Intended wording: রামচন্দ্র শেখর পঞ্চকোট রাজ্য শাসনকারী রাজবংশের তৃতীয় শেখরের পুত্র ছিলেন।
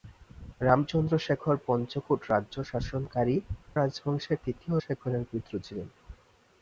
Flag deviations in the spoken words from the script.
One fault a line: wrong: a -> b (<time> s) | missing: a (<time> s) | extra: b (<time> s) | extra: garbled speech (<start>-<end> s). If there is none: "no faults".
no faults